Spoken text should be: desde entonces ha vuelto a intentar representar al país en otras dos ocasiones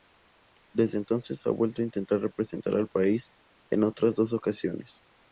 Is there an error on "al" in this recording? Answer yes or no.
no